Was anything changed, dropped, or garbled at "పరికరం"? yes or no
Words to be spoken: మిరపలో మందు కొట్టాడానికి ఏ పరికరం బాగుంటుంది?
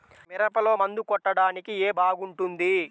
yes